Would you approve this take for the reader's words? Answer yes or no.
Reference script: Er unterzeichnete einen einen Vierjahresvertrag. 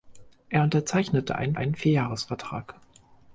yes